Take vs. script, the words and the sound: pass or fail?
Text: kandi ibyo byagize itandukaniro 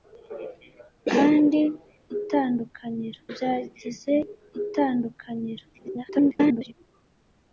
fail